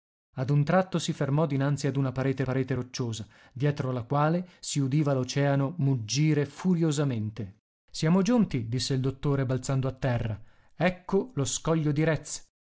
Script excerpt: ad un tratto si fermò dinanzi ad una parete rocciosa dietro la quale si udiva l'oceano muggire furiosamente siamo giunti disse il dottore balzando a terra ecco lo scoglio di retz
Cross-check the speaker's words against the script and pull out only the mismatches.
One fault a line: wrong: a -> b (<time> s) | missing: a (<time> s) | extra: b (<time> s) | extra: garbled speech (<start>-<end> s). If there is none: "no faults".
extra: parete (2.4 s)